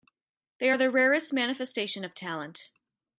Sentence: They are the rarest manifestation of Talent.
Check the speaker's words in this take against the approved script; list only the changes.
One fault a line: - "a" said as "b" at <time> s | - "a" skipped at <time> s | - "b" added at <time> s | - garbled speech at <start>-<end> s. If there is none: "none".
none